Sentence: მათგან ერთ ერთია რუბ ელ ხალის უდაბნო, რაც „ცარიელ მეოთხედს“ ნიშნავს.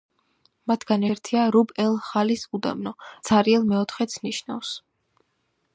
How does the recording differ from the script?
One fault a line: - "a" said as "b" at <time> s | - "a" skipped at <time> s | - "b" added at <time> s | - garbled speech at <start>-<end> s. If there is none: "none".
- "ერთ" skipped at 1.0 s
- "რაც" skipped at 2.9 s